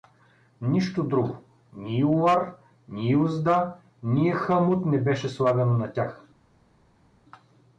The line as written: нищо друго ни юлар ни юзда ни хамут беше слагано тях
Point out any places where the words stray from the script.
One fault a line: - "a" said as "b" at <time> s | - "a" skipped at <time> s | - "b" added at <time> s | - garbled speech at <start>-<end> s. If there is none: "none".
- "не" added at 4.8 s
- "на" added at 5.8 s